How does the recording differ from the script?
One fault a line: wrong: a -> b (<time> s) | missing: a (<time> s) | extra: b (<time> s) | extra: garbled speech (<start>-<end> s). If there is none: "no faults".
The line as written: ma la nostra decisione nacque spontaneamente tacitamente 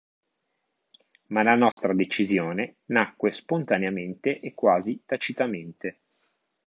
extra: e quasi (4.4 s)